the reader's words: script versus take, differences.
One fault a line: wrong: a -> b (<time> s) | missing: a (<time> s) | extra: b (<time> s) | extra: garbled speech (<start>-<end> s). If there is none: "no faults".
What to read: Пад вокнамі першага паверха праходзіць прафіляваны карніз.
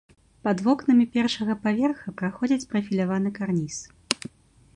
no faults